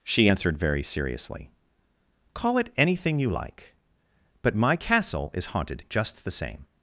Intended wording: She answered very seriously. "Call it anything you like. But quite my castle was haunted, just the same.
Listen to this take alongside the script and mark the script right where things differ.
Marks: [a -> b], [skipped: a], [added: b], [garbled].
She answered very seriously. "Call it anything you like. But [skipped: quite] my castle [was -> is] haunted, just the same.